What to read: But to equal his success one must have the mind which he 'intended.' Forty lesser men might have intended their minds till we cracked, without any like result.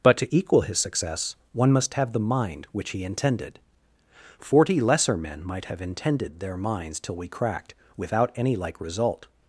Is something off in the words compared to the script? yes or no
no